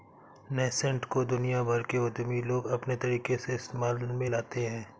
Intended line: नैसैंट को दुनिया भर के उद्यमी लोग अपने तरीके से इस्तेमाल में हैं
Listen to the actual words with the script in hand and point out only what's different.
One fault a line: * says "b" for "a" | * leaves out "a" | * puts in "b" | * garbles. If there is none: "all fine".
* puts in "लाते"